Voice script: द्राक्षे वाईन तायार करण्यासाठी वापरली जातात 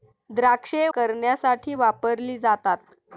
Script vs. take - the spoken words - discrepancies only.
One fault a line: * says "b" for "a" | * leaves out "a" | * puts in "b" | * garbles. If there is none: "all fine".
* leaves out "वाईन तायार"